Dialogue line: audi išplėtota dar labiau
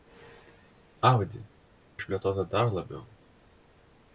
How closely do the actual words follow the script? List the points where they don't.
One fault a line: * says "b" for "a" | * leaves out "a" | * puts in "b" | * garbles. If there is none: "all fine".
all fine